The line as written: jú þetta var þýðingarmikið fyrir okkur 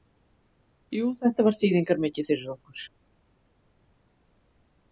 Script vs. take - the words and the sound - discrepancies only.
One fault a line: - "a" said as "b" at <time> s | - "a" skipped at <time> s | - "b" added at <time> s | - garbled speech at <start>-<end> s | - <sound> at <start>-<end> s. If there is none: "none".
none